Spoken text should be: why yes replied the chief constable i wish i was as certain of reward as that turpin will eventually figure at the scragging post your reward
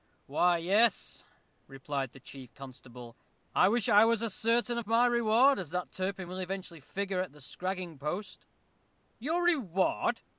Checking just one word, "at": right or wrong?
right